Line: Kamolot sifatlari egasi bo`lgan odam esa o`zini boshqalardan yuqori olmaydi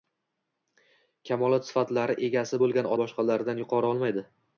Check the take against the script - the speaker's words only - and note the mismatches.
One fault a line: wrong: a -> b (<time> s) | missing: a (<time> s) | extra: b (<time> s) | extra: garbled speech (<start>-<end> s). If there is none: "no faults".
missing: odam esa o`zini (2.9 s)